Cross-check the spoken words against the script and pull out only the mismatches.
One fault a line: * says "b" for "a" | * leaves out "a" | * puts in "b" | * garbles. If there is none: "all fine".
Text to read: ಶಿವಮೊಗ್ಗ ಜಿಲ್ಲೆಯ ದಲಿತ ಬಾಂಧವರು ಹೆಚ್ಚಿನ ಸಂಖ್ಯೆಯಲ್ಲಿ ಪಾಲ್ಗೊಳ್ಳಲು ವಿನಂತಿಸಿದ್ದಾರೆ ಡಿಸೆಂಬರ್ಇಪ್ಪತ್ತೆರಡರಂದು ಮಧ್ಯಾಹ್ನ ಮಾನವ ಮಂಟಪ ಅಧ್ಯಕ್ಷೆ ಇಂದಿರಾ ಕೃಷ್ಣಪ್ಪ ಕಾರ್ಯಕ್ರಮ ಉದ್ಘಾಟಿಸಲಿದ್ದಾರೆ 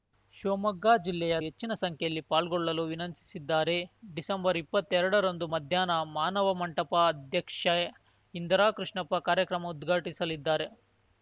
* leaves out "ದಲಿತ ಬಾಂಧವರು"